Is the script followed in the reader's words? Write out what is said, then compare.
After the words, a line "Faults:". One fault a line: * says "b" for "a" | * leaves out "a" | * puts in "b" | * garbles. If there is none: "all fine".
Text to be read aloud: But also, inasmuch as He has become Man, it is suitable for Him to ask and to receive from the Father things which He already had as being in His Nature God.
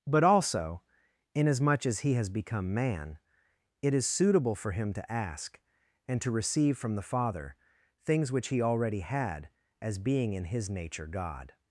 But also, inasmuch as He has become Man, it is suitable for Him to ask and to receive from the Father things which He already had as being in His Nature God.
Faults:
all fine